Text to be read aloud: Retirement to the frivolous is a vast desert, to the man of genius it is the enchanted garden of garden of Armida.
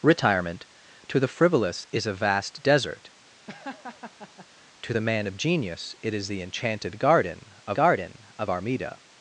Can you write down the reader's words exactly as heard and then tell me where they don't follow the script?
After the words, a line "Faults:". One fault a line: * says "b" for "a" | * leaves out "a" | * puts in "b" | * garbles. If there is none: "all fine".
Retirement to the frivolous is a vast desert, to the man of genius it is the enchanted garden of garden of Armida.
Faults:
all fine